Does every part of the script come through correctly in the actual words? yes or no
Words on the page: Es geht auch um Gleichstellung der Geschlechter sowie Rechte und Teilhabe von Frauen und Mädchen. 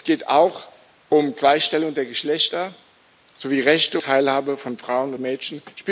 no